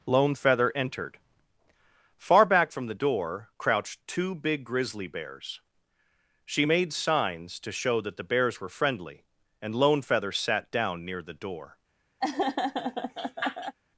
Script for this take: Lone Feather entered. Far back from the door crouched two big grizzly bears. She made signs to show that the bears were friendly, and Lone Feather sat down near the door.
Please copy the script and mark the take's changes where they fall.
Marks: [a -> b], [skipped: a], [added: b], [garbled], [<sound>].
Lone Feather entered. Far back from the door crouched two big grizzly bears. She made signs to show that the bears were friendly, and Lone Feather sat down near the door. [laugh]